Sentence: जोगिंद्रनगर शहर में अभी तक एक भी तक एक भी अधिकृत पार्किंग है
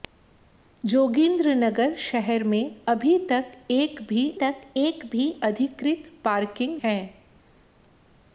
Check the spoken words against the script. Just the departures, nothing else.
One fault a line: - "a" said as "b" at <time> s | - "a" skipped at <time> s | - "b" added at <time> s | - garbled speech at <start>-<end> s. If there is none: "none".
none